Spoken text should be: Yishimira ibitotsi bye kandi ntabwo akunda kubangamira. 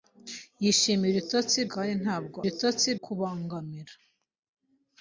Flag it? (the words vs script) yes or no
yes